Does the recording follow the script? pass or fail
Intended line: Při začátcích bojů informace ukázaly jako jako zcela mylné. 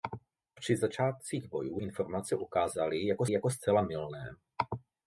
pass